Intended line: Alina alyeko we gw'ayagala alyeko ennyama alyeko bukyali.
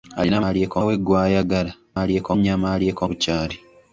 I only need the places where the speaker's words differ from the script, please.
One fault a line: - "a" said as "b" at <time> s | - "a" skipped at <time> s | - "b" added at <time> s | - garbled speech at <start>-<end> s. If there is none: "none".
none